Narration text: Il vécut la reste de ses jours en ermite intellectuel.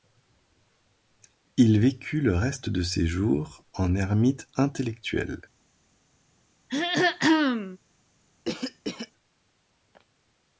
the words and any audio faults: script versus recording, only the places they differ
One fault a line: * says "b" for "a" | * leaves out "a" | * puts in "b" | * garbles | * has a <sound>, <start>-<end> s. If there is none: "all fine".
* says "le" for "la"
* has a throat clearing, 6.7-7.8 s
* has a cough, 8.5-9.1 s